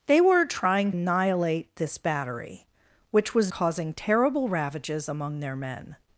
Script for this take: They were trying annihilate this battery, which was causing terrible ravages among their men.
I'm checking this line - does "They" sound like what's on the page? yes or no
yes